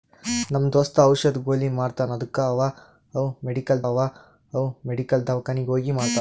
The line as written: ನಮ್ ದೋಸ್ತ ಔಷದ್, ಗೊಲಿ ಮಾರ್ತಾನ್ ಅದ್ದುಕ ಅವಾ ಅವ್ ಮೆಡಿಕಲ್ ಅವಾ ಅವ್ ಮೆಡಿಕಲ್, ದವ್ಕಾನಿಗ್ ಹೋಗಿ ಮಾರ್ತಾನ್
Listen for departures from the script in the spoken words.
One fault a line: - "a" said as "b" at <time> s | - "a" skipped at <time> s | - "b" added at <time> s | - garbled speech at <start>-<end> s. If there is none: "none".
none